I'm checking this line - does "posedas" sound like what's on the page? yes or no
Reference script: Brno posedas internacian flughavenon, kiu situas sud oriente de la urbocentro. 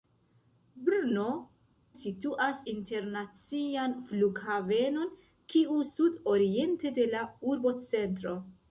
no